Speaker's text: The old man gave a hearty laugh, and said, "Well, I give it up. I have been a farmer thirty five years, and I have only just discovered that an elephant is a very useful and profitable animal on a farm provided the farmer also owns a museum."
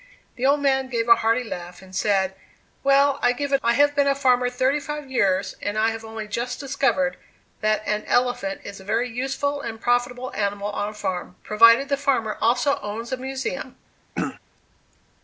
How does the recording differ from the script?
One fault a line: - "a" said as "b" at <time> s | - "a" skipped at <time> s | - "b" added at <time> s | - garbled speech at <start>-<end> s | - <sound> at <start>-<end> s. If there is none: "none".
- "up" skipped at 3.6 s
- throat clearing at 14.2-14.4 s